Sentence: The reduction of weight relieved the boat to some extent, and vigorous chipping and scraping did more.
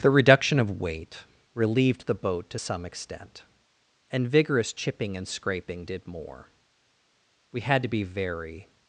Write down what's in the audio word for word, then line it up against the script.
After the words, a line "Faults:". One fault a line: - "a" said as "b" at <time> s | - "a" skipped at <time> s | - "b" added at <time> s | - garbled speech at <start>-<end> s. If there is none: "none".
The reduction of weight relieved the boat to some extent, and vigorous chipping and scraping did more. We had to be very
Faults:
- "We had to be very" added at 7.5 s